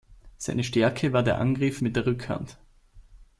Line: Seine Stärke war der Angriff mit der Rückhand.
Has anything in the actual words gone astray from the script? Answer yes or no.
no